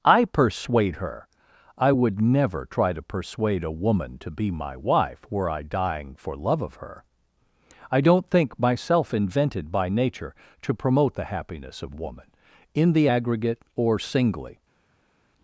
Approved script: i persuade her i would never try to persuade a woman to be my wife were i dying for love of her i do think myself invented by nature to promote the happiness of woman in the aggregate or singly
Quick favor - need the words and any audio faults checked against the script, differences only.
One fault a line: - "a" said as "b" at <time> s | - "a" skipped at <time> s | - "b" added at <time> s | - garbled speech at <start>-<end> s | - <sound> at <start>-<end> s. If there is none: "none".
- "do" said as "don't" at 8.0 s